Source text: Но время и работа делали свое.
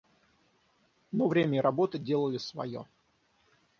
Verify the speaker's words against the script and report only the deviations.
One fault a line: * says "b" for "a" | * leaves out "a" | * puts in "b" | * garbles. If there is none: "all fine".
all fine